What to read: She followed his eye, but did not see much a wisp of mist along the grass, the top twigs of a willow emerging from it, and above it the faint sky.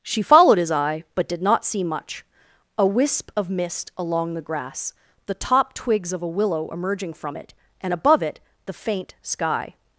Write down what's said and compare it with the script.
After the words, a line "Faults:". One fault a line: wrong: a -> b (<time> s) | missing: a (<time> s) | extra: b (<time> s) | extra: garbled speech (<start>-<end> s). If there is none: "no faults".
She followed his eye, but did not see much a wisp of mist along the grass, the top twigs of a willow emerging from it, and above it the faint sky.
Faults:
no faults